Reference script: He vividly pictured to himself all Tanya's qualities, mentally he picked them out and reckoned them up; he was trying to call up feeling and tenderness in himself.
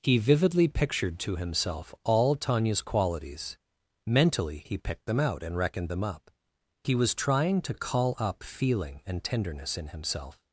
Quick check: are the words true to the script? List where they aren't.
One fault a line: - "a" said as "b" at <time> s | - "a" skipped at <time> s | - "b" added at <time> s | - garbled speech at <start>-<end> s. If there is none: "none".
none